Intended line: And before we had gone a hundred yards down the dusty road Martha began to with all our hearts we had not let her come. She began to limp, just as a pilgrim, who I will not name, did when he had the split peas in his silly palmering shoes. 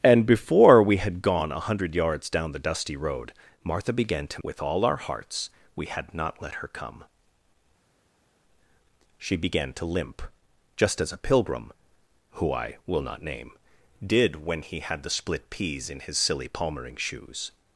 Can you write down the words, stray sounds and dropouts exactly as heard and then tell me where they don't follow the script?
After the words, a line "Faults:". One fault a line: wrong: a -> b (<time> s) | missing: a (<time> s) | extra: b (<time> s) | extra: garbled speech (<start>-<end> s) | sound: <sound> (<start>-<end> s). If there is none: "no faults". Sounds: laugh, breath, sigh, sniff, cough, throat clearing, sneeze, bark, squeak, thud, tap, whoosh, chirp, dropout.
And before we had gone a hundred yards down the dusty road Martha began to with all our hearts we had not let her come. She began to limp, just as a pilgrim, who I will not name, did when he had the split peas in his silly palmering shoes.
Faults:
no faults